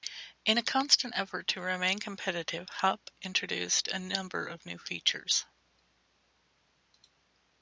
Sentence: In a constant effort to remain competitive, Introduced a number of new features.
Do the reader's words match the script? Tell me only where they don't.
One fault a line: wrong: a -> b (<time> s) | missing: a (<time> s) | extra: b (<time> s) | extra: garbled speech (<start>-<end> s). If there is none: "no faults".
extra: Hupp (2.7 s)